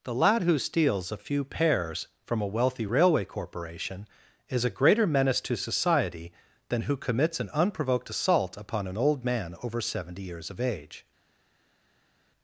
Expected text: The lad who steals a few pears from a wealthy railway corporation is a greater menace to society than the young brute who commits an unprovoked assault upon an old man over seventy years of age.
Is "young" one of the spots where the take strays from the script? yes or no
yes